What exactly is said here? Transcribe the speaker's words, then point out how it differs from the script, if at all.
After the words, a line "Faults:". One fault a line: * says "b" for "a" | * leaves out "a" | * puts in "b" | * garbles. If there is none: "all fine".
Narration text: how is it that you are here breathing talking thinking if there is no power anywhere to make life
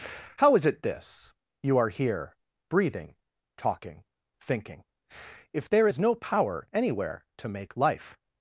how is it this you are here breathing talking thinking if there is no power anywhere to make life
Faults:
* says "this" for "that"